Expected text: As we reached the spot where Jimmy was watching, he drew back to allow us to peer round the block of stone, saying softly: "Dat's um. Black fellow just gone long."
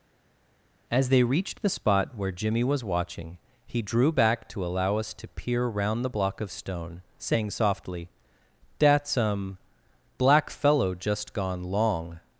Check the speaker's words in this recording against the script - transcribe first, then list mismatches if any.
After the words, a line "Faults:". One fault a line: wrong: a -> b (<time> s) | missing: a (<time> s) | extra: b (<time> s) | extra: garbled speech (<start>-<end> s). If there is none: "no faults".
As they reached the spot where Jimmy was watching, he drew back to allow us to peer round the block of stone, saying softly: "Dat's um. Black fellow just gone long."
Faults:
wrong: we -> they (1.1 s)